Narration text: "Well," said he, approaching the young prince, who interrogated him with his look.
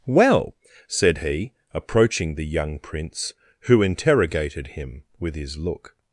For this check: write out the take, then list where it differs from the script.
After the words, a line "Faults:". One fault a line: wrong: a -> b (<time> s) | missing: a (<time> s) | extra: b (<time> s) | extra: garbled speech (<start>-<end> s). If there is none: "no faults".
"Well," said he, approaching the young prince, who interrogated him with his look.
Faults:
no faults